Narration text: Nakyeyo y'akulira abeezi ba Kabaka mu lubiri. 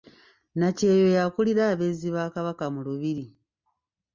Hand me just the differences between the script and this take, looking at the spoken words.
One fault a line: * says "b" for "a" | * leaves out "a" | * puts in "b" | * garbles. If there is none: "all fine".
all fine